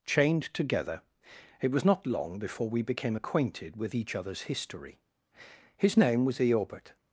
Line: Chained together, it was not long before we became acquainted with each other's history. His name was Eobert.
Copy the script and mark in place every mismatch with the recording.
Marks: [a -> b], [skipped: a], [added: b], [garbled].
Chained together, it was not long before we became acquainted with each other's history. His name was Eobert.